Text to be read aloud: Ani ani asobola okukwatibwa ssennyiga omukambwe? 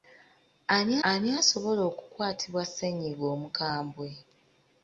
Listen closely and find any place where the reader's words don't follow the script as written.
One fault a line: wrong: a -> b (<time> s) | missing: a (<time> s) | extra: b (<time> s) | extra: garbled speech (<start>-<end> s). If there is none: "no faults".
no faults